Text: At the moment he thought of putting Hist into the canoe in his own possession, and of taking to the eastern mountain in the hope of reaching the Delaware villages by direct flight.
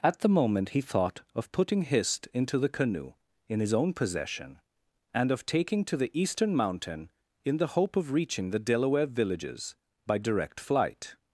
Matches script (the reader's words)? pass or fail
pass